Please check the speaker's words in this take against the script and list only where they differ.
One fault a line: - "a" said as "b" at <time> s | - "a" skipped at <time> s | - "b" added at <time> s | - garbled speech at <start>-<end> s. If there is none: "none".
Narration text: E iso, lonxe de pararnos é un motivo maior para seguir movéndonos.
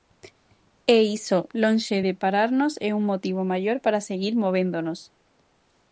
none